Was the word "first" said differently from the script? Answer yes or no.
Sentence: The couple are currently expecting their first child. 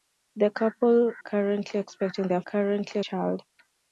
yes